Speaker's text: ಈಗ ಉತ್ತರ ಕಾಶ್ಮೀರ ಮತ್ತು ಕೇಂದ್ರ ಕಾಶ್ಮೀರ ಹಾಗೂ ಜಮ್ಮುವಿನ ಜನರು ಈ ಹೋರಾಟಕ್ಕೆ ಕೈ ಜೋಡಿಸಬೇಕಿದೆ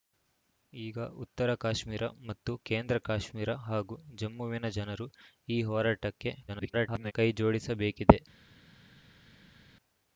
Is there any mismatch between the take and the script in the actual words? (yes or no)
yes